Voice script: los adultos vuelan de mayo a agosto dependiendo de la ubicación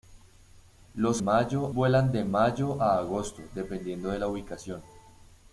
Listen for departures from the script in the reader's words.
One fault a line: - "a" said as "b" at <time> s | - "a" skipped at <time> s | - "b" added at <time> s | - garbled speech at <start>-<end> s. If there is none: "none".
- "adultos" said as "mayo" at 1.2 s